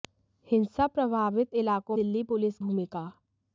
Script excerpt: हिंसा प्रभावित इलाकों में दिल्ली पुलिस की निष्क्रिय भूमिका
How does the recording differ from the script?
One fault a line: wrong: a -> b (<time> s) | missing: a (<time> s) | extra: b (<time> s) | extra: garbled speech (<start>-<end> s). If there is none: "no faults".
missing: में (2.0 s)
missing: की निष्क्रिय (2.6 s)